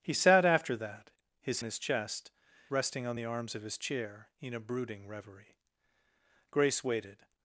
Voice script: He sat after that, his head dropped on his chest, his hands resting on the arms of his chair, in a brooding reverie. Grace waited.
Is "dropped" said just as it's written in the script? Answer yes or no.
no